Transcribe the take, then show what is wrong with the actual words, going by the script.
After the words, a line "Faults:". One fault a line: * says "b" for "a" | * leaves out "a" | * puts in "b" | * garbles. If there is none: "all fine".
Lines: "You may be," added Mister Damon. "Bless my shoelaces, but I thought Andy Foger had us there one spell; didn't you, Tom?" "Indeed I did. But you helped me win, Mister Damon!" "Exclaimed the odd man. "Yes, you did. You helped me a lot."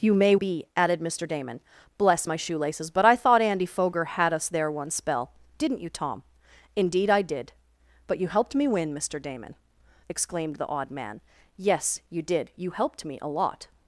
"You may be," added Mister Damon. "Bless my shoelaces, but I thought Andy Foger had us there one spell; didn't you, Tom?" "Indeed I did. But you helped me win, Mister Damon!" "Exclaimed the odd man. "Yes, you did. You helped me a lot."
Faults:
all fine